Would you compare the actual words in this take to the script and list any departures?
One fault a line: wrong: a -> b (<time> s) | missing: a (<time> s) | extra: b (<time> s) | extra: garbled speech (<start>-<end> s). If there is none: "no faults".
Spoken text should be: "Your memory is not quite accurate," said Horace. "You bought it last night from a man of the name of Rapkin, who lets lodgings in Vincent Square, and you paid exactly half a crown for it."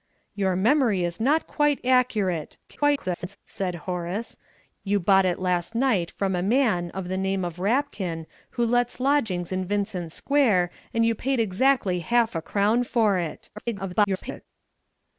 extra: garbled speech (2.7-3.4 s)
extra: garbled speech (13.6-14.5 s)